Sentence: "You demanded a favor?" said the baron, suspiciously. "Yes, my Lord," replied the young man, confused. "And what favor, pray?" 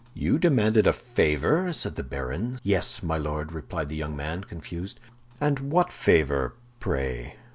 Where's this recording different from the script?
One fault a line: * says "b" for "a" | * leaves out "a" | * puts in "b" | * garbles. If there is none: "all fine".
* leaves out "suspiciously"